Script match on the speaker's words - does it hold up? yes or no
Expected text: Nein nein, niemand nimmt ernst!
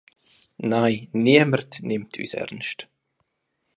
no